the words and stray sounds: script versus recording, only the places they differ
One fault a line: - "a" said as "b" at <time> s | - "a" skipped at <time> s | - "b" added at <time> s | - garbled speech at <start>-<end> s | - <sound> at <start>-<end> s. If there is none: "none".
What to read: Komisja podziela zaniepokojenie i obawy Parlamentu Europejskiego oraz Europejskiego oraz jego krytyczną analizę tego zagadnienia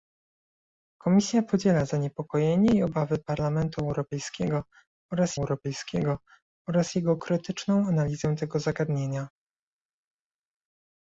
none